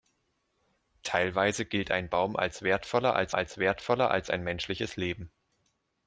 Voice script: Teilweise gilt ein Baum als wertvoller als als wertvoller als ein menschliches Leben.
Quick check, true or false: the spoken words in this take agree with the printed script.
true